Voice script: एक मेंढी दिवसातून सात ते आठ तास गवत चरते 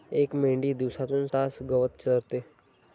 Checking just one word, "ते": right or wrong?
wrong